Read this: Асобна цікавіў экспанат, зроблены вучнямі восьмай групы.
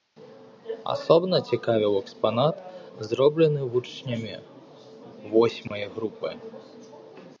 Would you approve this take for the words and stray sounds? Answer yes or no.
no